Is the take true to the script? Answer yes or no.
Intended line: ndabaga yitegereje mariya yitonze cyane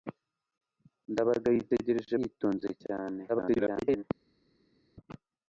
no